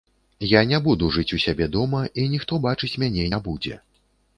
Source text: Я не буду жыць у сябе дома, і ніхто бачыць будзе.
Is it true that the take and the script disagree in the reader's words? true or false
true